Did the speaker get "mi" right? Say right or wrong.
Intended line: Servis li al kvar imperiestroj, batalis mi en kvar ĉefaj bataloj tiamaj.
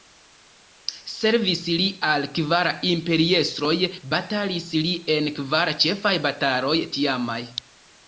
wrong